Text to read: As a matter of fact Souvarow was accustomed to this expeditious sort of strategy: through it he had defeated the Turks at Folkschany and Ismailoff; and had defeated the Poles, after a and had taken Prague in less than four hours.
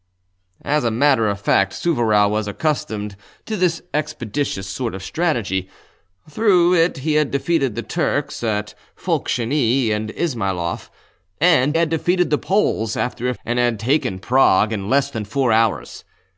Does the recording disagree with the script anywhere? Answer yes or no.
no